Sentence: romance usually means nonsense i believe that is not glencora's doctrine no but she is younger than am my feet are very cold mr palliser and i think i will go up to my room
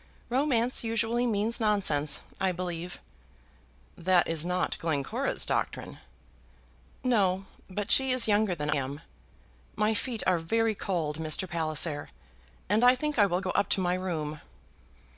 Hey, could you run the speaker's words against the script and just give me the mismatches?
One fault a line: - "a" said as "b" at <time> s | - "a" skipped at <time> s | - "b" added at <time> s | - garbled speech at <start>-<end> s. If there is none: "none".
none